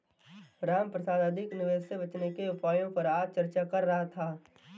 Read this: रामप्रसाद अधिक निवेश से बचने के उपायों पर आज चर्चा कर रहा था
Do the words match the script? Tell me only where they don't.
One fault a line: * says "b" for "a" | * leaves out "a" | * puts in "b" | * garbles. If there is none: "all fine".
all fine